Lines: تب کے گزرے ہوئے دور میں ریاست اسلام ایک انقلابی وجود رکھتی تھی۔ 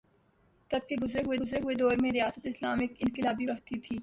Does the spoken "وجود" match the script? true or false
false